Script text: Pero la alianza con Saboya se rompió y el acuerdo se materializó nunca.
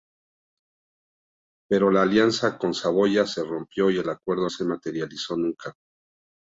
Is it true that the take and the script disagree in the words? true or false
false